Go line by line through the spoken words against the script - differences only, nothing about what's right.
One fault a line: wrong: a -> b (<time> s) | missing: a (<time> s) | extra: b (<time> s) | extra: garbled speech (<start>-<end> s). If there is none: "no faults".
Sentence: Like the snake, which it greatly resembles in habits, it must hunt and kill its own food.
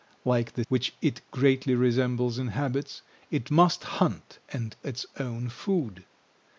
missing: snake (0.6 s)
missing: kill (4.8 s)